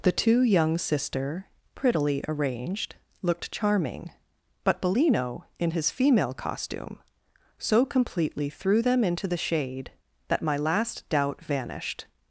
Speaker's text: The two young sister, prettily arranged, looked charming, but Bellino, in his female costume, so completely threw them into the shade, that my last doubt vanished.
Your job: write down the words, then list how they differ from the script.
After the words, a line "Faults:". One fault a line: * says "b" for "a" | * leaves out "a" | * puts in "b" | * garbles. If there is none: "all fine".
The two young sister, prettily arranged, looked charming, but Bellino, in his female costume, so completely threw them into the shade, that my last doubt vanished.
Faults:
all fine